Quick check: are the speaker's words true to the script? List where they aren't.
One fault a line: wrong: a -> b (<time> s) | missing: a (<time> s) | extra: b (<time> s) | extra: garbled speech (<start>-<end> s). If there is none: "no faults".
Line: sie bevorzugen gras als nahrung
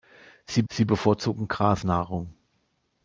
extra: sie (0.7 s)
missing: als (1.8 s)